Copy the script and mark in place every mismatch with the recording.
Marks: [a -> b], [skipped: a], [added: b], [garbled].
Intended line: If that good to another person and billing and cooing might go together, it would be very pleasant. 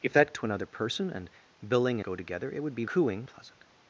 If that [skipped: good] to another person and billing [skipped: and cooing might] go together, it would be [very -> cooing] pleasant.